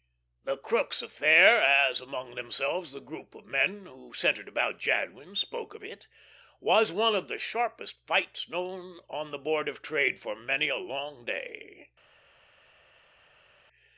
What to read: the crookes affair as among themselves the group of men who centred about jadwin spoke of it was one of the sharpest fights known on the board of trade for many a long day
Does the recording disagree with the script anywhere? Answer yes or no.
no